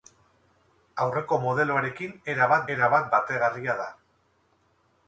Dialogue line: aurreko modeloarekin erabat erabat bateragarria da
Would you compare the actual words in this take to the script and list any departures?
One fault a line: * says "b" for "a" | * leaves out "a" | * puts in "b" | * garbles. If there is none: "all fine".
all fine